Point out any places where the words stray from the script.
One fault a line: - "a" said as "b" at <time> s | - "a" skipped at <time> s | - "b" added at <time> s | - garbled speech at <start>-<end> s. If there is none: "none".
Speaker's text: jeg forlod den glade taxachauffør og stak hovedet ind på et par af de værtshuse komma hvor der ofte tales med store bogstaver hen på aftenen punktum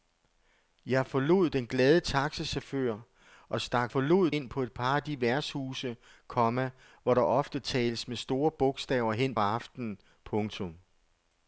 - "hovedet" said as "forlod" at 3.9 s
- "på" skipped at 9.3 s